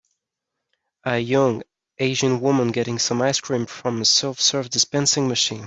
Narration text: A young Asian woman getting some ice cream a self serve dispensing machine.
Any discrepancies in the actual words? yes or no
yes